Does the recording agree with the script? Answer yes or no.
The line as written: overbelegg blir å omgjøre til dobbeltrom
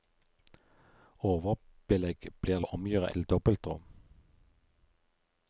yes